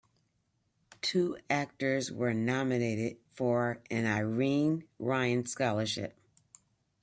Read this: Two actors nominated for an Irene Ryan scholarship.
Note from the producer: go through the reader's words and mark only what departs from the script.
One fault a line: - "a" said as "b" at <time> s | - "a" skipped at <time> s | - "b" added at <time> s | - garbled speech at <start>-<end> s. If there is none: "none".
- "were" added at 2.1 s